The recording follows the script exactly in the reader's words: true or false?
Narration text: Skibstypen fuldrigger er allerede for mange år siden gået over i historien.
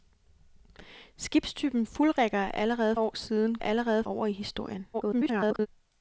false